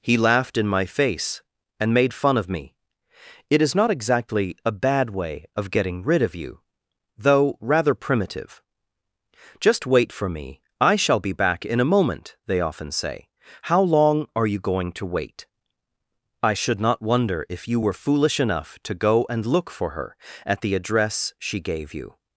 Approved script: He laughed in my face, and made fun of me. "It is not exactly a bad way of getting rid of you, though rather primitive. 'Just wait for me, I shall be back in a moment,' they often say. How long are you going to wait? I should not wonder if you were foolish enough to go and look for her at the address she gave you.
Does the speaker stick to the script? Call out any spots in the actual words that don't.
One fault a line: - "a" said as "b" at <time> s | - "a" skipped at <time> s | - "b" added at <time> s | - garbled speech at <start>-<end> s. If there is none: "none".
none